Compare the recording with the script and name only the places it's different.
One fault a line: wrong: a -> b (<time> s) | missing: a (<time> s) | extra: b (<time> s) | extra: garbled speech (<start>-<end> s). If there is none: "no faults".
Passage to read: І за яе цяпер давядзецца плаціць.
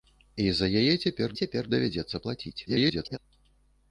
extra: цяпер (1.4 s)
extra: garbled speech (2.7-3.2 s)